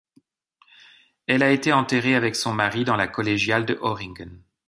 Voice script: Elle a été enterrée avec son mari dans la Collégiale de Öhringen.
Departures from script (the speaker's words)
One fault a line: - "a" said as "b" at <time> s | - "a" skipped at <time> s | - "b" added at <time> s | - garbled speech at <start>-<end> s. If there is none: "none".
none